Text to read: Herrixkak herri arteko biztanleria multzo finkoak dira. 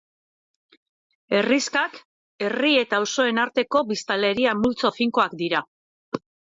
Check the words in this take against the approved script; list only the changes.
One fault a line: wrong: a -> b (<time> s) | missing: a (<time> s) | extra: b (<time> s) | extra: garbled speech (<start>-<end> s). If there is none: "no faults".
extra: eta auzoen (2.9 s)